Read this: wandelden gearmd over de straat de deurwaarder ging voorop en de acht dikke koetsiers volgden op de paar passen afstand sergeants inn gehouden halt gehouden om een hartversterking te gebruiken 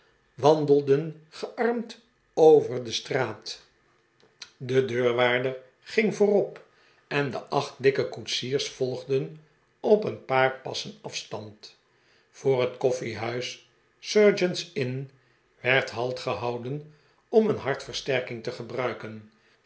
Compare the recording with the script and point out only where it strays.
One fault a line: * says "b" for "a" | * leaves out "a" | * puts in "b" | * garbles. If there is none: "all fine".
* says "een" for "de"
* puts in "voor het koffiehuis"
* says "werd" for "gehouden"